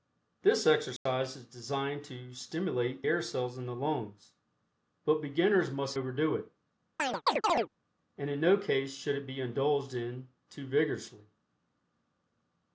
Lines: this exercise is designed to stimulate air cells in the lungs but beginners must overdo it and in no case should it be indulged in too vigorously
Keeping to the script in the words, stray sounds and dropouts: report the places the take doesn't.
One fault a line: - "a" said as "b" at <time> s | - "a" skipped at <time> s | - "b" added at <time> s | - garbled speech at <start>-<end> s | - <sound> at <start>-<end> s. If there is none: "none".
- dropout at 1.0-1.1 s
- chirp at 7.0-7.7 s